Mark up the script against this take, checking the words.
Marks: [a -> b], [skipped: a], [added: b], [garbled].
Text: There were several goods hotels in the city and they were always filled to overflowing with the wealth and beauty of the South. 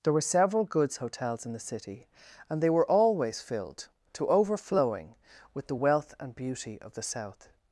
There were several goods hotels in the city and they were always filled to overflowing with the wealth and beauty of the South.